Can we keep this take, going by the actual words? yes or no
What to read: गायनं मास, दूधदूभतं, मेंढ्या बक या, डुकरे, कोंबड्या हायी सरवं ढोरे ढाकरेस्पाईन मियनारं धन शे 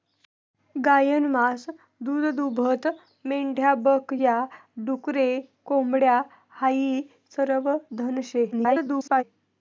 no